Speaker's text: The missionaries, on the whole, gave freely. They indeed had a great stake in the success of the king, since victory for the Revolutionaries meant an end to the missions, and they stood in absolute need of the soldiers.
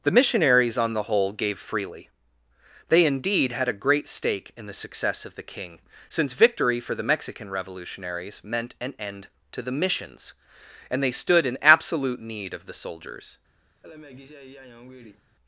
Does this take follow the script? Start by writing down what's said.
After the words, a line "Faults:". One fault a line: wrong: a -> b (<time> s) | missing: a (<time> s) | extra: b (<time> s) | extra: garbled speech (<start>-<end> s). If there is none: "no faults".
The missionaries, on the whole, gave freely. They indeed had a great stake in the success of the king, since victory for the Mexican revolutionaries meant an end to the missions, and they stood in absolute need of the soldiers.
Faults:
extra: Mexican (7.0 s)